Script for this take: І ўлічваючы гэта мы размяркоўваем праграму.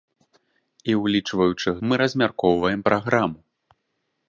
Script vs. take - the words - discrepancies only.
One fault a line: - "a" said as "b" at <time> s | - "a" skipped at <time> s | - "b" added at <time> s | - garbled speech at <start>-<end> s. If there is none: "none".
- "гэта" skipped at 1.7 s